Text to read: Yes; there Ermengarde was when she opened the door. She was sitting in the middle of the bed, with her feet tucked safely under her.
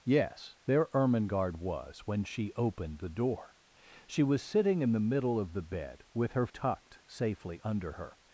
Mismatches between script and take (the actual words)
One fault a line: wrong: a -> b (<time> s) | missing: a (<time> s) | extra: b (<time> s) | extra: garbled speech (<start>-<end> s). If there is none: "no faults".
missing: feet (6.5 s)